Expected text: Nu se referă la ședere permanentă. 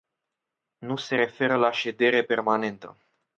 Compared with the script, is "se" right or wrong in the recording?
right